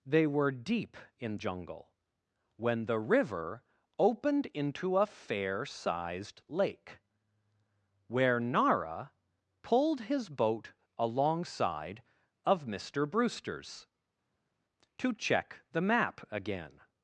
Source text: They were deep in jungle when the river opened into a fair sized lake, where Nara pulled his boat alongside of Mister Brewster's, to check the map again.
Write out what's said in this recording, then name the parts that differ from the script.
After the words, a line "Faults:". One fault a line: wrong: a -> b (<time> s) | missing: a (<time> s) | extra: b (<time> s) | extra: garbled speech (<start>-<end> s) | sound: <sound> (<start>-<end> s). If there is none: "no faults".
They were deep in jungle when the river opened into a fair sized lake, where Nara pulled his boat alongside of Mister Brewster's, to check the map again.
Faults:
no faults